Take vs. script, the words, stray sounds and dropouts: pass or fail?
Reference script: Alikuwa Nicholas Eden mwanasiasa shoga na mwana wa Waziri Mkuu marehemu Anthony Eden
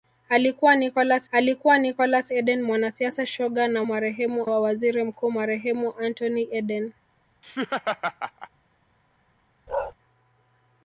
fail